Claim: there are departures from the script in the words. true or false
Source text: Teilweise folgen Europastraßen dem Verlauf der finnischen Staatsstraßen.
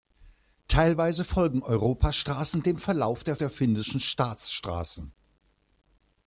true